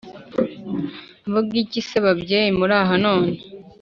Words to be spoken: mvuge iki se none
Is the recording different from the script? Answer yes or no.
yes